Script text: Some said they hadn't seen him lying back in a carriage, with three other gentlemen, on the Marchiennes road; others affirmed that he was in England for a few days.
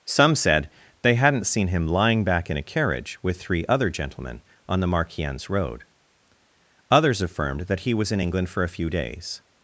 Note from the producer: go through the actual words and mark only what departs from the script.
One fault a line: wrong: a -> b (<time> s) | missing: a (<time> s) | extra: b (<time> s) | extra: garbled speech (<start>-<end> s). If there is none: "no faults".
no faults